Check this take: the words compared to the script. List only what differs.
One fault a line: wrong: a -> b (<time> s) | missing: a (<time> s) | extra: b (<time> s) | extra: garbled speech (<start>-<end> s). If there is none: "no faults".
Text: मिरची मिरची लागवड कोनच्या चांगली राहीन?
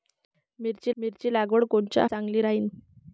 no faults